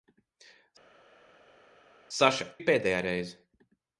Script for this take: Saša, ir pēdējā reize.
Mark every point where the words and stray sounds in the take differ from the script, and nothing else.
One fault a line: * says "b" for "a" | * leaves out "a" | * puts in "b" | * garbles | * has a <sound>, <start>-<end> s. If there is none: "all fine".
all fine